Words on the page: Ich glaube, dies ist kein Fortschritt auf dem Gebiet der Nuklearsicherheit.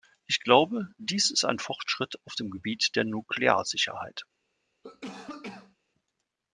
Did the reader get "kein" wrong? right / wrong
wrong